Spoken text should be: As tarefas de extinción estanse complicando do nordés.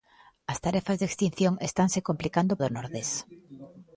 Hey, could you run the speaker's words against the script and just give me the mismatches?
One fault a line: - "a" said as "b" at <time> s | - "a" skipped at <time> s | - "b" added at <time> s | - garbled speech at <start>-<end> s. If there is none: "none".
none